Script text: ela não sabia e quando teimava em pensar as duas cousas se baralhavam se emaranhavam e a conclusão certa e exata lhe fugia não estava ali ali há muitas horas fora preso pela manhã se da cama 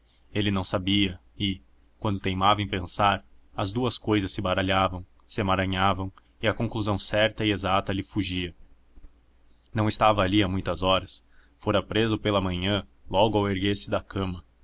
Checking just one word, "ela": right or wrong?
wrong